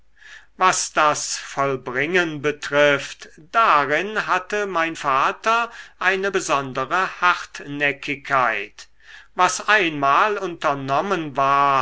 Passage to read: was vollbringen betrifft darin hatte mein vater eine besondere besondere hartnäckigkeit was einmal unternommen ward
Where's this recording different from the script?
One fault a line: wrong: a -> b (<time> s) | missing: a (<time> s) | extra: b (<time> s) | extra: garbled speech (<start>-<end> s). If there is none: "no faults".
extra: das (0.9 s)
missing: besondere (7.2 s)